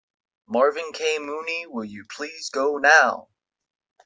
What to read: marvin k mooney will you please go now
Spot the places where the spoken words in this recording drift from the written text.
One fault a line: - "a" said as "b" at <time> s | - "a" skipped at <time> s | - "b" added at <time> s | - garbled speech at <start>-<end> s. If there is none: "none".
none